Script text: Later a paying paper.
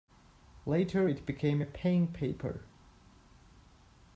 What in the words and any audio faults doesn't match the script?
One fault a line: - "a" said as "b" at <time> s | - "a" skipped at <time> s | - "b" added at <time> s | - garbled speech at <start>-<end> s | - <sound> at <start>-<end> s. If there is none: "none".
- "it became" added at 1.1 s